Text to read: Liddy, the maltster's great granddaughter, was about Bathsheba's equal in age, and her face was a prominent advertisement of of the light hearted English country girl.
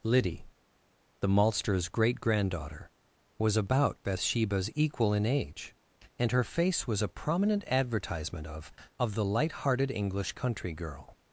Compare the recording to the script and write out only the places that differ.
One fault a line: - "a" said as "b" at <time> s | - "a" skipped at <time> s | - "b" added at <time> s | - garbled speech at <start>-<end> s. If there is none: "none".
none